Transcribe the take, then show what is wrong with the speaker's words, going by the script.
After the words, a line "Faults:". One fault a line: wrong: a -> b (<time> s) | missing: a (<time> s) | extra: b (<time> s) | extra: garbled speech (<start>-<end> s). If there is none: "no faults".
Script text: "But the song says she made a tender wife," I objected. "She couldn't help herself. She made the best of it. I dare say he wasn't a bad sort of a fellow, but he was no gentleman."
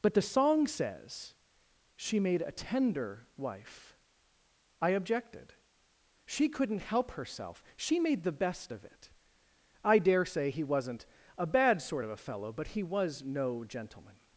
"But the song says she made a tender wife," I objected. "She couldn't help herself. She made the best of it. I dare say he wasn't a bad sort of a fellow, but he was no gentleman."
Faults:
no faults